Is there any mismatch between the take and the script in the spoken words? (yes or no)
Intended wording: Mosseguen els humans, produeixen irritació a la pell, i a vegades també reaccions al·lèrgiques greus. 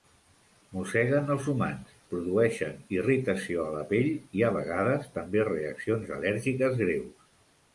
no